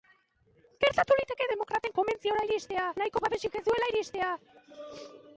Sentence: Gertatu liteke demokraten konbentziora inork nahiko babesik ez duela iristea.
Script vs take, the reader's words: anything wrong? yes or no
yes